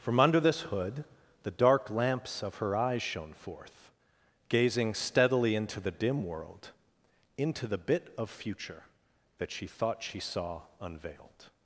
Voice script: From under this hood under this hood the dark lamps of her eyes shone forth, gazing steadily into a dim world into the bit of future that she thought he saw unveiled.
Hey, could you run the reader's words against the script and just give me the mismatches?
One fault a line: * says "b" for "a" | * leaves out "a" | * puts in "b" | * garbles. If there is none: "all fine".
* leaves out "under this hood"
* says "the" for "a"
* says "she" for "he"